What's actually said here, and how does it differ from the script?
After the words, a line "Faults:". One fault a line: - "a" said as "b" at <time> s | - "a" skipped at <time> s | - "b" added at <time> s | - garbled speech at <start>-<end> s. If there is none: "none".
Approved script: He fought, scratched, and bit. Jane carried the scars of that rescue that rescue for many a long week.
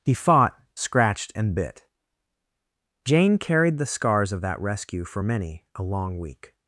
He fought, scratched, and bit. Jane carried the scars of that rescue for many a long week.
Faults:
- "that rescue" skipped at 5.0 s